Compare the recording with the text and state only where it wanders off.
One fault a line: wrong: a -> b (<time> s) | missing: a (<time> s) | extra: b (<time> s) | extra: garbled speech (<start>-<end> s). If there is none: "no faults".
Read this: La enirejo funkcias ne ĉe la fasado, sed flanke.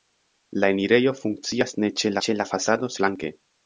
extra: ĉe (2.3 s)
missing: sed (3.0 s)